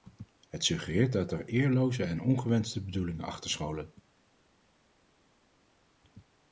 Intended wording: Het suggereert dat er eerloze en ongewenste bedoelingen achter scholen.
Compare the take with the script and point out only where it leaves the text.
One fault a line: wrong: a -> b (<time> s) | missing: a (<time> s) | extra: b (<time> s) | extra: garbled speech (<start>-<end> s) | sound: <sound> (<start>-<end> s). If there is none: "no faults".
no faults